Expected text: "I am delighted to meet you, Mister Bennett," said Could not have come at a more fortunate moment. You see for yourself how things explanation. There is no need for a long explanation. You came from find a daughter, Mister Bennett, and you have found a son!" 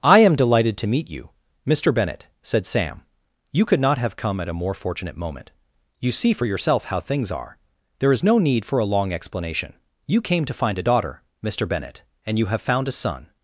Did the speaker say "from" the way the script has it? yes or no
no